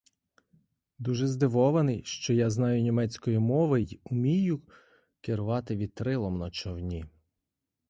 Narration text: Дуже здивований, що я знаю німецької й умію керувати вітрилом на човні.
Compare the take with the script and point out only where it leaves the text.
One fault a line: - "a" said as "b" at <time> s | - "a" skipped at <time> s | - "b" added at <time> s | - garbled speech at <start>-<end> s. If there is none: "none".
- "мови" added at 3.4 s